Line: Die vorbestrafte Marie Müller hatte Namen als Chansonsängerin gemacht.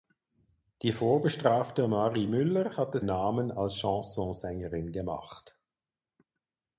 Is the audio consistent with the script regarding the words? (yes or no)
yes